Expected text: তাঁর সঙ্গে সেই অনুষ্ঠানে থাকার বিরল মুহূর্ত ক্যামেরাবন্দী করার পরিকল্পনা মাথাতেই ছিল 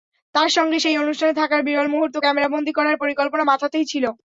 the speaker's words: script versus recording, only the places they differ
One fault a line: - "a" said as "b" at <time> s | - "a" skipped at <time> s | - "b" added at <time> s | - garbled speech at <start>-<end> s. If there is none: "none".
none